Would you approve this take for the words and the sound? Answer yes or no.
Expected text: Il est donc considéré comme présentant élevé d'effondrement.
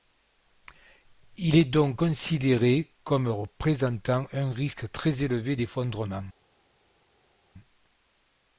no